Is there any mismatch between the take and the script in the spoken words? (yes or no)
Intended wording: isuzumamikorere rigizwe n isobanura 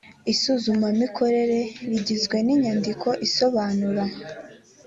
yes